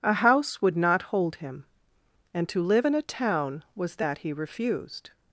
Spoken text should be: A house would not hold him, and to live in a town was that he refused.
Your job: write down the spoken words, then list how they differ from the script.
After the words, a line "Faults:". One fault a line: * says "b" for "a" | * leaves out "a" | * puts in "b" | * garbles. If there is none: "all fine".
A house would not hold him, and to live in a town was that he refused.
Faults:
all fine